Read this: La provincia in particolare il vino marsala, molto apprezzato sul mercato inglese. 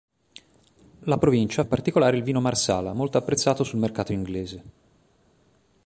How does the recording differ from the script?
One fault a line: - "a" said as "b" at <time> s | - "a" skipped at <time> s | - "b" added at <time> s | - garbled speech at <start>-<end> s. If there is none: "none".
none